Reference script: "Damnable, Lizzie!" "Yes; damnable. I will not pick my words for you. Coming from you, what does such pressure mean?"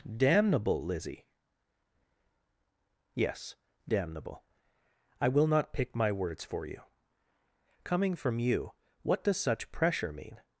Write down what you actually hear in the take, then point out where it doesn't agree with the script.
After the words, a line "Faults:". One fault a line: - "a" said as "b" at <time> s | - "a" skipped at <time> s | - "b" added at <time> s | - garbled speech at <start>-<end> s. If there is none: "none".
"Damnable, Lizzie!" "Yes; damnable. I will not pick my words for you. Coming from you, what does such pressure mean?"
Faults:
none